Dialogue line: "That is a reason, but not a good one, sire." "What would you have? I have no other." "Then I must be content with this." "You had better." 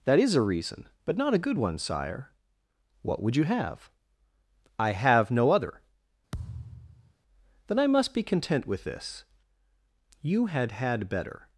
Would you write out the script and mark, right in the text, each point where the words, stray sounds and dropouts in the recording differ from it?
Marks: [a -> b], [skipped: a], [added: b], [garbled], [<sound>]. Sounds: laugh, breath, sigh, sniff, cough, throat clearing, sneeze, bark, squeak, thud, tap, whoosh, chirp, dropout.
"That is a reason, but not a good one, sire." "What would you have? I have no other." [thud] "Then I must be content with this." "You had [added: had] better."